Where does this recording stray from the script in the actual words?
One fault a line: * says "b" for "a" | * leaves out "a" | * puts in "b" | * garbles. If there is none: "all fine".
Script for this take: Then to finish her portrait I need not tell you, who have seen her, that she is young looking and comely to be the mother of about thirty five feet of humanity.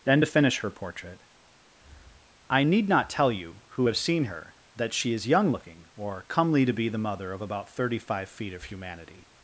* says "or" for "and"